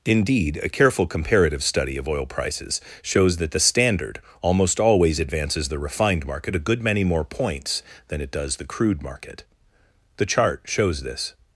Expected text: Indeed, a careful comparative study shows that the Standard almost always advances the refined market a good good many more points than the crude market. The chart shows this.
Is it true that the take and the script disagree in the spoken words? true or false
true